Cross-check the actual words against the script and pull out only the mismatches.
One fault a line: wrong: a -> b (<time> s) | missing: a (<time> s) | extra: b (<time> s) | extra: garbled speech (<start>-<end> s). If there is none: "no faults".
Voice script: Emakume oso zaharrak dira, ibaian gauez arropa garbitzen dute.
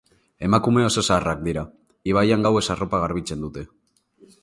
no faults